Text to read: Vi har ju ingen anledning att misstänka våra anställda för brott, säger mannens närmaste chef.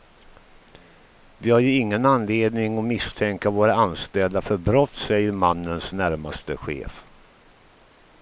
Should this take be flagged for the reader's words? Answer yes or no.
no